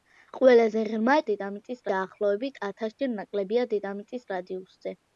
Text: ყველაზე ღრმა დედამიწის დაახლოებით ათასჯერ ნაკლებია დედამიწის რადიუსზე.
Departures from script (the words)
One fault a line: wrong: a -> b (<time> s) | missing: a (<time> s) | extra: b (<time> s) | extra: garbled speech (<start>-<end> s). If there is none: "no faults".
no faults